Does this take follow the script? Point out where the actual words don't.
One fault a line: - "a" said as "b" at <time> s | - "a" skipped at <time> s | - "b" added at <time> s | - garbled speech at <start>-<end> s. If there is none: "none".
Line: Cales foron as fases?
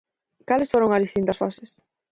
- "distintas" added at 1.1 s